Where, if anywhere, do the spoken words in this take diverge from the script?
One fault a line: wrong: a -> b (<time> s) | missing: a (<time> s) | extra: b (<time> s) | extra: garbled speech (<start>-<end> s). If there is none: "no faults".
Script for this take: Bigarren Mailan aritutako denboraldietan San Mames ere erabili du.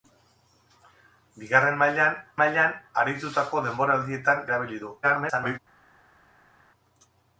extra: Mailan (2.4 s)
missing: San Mames ere (4.4 s)
extra: garbled speech (5.0-5.6 s)